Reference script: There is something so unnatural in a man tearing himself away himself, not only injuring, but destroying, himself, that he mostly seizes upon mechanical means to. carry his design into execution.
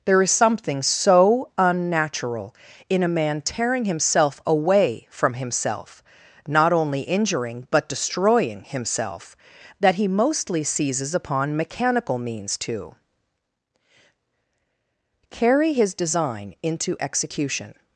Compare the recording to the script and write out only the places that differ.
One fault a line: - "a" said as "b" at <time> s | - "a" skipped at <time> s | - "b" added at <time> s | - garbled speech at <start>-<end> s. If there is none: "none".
- "from" added at 5.1 s